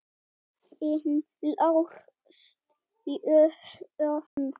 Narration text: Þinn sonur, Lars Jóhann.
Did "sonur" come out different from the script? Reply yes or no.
yes